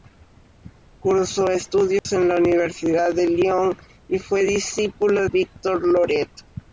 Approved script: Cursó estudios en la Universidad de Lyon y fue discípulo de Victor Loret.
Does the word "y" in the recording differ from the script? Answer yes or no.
no